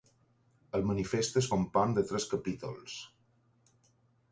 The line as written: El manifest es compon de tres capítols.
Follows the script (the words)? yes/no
yes